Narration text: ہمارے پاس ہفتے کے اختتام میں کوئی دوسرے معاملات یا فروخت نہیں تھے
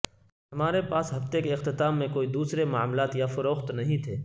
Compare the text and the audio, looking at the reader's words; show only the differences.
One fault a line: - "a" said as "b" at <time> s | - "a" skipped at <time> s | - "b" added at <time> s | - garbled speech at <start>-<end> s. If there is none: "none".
none